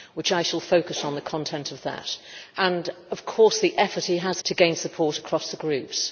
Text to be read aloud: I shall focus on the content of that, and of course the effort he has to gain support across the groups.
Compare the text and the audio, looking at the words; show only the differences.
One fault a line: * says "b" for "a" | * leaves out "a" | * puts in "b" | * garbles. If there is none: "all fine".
all fine